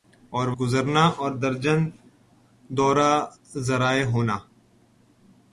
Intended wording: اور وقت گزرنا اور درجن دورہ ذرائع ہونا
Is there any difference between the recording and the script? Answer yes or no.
yes